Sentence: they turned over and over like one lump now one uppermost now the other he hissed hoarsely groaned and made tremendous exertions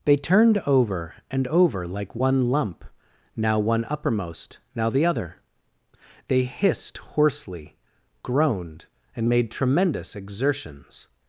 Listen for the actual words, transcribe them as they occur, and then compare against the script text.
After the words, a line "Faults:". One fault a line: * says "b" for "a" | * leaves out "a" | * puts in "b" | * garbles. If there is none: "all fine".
they turned over and over like one lump now one uppermost now the other they hissed hoarsely groaned and made tremendous exertions
Faults:
* says "they" for "he"